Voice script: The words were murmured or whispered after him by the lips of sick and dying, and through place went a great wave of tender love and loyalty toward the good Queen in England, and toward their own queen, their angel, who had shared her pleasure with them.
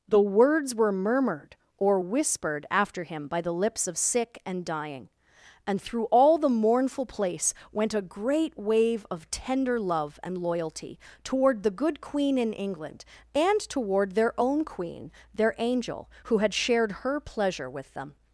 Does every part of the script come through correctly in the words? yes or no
no